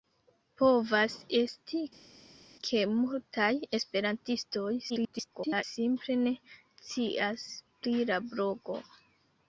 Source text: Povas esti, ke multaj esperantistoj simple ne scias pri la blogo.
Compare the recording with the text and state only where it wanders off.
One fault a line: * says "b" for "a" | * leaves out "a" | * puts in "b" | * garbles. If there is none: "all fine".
* garbles